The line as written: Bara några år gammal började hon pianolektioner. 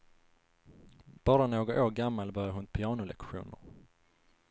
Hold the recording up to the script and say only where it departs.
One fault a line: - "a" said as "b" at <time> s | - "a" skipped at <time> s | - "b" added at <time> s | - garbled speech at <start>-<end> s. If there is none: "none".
none